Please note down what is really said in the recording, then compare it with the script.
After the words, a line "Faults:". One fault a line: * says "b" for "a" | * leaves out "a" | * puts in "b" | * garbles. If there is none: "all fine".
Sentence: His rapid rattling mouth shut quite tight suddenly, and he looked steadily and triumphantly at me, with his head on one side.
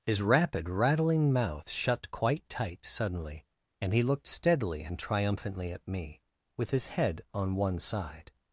His rapid rattling mouth shut quite tight suddenly, and he looked steadily and triumphantly at me, with his head on one side.
Faults:
all fine